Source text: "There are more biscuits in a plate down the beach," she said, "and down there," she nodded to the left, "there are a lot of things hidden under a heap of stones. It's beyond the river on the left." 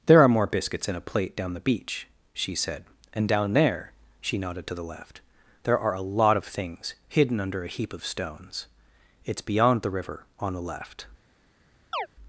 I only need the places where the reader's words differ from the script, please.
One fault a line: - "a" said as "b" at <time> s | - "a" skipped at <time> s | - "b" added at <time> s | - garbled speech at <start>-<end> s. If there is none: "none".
none